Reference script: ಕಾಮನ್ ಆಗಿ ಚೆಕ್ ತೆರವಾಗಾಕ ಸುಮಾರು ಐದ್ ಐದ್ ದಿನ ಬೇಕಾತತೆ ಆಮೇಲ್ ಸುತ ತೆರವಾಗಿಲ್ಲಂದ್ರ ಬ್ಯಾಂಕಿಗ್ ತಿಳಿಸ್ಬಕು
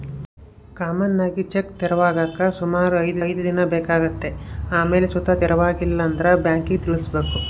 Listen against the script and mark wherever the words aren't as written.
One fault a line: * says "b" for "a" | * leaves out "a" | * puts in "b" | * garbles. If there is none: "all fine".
all fine